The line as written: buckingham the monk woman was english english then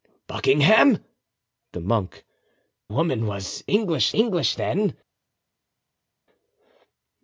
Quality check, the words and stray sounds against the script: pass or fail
pass